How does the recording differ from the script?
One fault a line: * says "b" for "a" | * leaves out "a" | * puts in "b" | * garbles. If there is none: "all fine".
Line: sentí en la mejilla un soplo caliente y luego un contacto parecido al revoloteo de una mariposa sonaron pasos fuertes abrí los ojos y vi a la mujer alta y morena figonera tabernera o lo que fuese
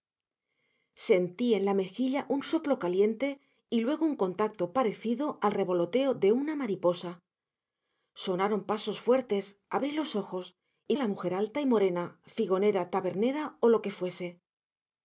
* leaves out "vi"